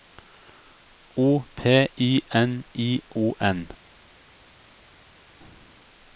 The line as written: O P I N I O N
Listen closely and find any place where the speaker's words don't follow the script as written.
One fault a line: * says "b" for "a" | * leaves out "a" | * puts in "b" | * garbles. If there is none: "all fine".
all fine